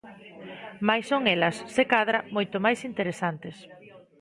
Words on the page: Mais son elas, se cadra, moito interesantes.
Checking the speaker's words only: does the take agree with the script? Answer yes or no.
no